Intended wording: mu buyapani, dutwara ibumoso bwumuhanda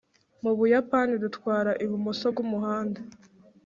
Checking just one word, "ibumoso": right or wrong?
right